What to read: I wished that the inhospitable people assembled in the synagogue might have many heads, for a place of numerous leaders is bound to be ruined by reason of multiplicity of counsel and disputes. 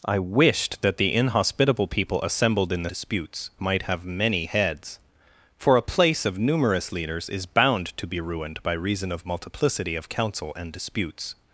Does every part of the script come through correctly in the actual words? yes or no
no